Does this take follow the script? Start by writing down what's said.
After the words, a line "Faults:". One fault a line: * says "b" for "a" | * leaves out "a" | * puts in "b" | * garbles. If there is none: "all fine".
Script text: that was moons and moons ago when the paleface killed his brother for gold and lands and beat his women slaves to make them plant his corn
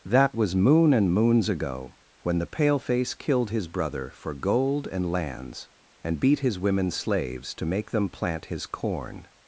that was moon and moons ago when the paleface killed his brother for gold and lands and beat his women slaves to make them plant his corn
Faults:
* says "moon" for "moons"